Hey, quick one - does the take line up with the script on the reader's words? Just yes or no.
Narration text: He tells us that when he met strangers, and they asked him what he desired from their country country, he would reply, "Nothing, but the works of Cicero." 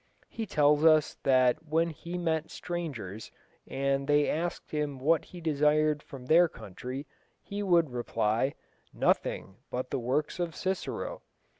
no